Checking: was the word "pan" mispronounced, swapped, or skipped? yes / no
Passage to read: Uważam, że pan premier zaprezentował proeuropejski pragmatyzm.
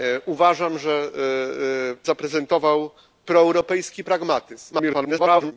yes